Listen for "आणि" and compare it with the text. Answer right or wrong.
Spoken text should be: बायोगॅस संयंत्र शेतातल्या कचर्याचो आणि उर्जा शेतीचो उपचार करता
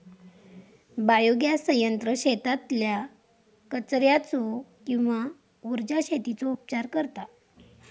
wrong